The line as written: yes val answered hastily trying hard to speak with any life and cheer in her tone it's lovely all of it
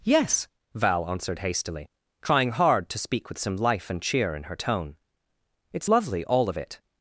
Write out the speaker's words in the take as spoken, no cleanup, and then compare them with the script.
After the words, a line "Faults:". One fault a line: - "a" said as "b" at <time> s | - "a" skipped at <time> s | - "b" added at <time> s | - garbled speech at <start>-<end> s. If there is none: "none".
yes val answered hastily trying hard to speak with some life and cheer in her tone it's lovely all of it
Faults:
- "any" said as "some" at 3.4 s